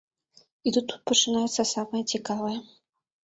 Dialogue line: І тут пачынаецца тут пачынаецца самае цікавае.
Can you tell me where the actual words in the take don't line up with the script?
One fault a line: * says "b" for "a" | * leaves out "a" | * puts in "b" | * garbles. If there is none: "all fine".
* leaves out "тут пачынаецца"